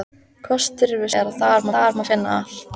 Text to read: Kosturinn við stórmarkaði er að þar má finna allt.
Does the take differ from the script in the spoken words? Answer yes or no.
yes